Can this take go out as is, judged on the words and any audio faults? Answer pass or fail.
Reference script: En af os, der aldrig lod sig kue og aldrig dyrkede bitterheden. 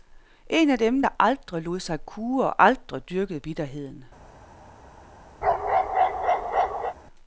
fail